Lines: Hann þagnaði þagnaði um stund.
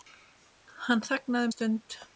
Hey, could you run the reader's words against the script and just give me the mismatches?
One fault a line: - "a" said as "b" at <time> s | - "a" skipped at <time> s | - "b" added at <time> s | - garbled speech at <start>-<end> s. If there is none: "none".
- "þagnaði" skipped at 1.5 s